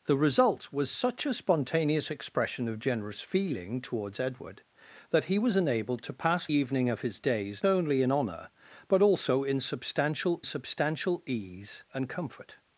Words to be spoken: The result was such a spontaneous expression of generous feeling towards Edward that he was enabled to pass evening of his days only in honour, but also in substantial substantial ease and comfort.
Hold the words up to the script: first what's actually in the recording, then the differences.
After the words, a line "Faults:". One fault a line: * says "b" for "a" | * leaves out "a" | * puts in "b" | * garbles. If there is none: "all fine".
The result was such a spontaneous expression of generous feeling towards Edward that he was enabled to pass evening of his days only in honour, but also in substantial substantial ease and comfort.
Faults:
all fine